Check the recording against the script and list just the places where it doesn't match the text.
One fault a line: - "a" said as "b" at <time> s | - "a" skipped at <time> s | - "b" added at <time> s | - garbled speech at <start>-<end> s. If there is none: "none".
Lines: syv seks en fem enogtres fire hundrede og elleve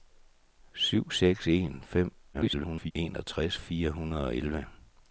- garbled speech at 2.3-2.9 s